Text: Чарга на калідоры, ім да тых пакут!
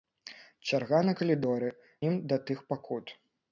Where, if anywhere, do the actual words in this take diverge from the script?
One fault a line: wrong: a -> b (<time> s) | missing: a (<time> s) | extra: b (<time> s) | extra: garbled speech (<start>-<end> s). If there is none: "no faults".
no faults